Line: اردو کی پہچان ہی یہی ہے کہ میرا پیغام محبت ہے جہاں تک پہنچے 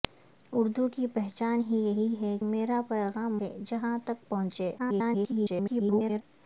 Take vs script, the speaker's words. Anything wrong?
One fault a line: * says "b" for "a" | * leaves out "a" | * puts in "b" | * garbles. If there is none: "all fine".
* leaves out "کہ"
* leaves out "محبت"
* garbles